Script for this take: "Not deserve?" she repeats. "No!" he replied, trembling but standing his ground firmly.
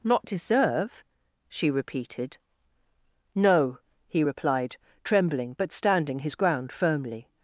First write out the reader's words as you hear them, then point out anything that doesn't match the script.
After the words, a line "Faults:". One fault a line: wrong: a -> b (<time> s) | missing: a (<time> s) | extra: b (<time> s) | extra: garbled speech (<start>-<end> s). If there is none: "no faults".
"Not deserve?" she repeated. "No!" he replied, trembling but standing his ground firmly.
Faults:
wrong: repeats -> repeated (1.7 s)